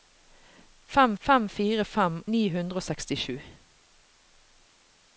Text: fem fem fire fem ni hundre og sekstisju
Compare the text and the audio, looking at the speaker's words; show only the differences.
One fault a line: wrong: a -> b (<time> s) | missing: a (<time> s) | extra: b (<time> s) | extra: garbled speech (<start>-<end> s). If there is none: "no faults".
no faults